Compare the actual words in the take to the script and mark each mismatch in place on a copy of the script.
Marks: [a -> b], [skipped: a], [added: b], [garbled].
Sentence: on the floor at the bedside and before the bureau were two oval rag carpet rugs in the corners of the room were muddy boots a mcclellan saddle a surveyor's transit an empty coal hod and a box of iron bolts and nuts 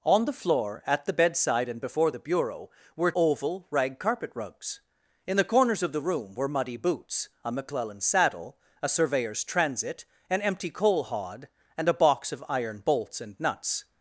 on the floor at the bedside and before the bureau were [skipped: two] oval rag carpet rugs in the corners of the room were muddy boots a mcclellan saddle a surveyor's transit an empty coal hod and a box of iron bolts and nuts